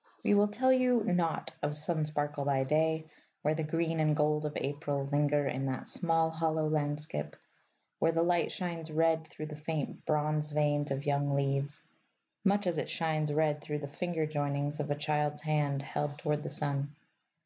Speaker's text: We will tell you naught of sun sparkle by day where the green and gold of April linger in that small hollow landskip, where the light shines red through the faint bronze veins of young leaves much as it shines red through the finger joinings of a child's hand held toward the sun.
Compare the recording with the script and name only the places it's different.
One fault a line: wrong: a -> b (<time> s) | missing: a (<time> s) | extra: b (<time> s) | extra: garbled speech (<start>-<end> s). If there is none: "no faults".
no faults